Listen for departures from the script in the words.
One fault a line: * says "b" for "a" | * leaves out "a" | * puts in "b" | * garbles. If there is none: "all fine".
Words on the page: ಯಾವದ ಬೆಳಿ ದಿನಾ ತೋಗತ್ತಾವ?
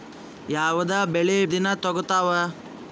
all fine